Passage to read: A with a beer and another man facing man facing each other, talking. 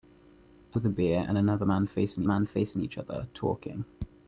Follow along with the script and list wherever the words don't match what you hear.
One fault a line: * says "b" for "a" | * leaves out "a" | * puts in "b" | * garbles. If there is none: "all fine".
all fine